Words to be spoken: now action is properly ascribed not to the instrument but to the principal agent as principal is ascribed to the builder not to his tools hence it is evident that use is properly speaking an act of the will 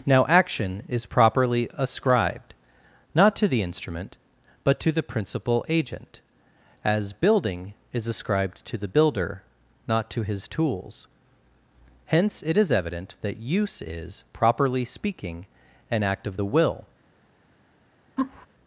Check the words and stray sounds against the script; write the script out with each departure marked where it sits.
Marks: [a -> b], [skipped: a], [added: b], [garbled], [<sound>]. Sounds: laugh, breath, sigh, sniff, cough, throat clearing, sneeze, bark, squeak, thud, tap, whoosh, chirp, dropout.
now action is properly ascribed not to the instrument but to the principal agent as [principal -> building] is ascribed to the builder not to his tools hence it is evident that use is properly speaking an act of the will [laugh]